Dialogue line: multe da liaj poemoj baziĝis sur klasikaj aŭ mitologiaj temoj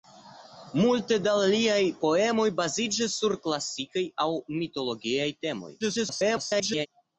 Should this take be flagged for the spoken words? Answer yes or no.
yes